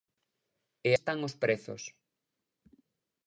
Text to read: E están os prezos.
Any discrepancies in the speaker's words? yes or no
no